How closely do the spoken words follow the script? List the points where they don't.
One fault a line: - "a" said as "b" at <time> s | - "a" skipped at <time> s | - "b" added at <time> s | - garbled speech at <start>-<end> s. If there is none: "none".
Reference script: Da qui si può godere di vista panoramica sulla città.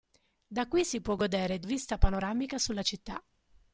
none